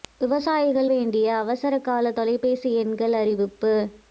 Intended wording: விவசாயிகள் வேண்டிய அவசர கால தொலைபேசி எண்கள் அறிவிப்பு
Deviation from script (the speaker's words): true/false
false